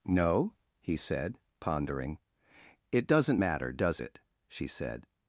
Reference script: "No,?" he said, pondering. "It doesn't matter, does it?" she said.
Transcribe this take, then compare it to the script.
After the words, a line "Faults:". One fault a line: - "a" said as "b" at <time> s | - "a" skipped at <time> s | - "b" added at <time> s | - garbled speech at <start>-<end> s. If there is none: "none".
"No,?" he said, pondering. "It doesn't matter, does it?" she said.
Faults:
none